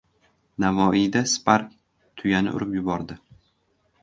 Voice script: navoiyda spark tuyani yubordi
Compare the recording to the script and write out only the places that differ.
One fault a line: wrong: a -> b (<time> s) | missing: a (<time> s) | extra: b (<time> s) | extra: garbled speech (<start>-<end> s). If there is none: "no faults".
extra: urib (2.6 s)